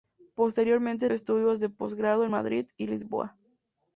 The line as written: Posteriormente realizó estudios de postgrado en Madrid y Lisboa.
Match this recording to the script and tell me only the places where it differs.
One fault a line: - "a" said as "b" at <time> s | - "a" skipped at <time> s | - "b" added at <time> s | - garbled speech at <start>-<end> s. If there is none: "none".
- "realizó" skipped at 1.1 s